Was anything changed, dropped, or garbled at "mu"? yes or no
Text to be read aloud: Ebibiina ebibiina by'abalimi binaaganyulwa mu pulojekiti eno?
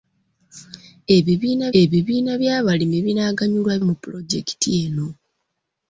no